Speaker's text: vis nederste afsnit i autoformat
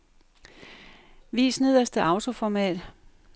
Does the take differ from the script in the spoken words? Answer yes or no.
yes